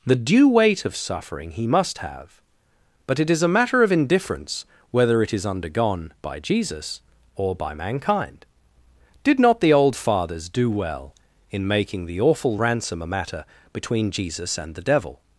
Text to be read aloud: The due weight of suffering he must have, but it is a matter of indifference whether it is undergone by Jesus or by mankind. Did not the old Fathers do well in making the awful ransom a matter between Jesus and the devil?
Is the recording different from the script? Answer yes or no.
no